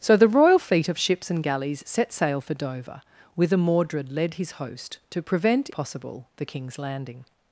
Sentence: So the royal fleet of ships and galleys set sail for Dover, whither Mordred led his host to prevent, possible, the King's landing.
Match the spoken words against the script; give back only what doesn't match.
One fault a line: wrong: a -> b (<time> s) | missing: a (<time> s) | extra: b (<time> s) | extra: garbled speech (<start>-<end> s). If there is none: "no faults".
no faults